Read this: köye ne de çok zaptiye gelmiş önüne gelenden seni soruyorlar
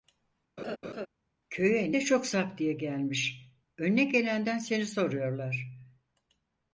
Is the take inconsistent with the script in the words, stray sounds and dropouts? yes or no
yes